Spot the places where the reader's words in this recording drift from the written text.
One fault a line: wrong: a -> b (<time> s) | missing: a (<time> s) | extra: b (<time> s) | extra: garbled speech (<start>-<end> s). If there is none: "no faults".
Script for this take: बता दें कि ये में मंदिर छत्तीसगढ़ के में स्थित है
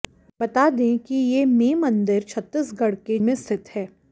no faults